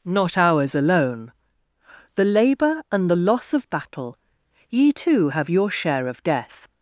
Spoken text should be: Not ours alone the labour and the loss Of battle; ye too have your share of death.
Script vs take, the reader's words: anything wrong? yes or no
no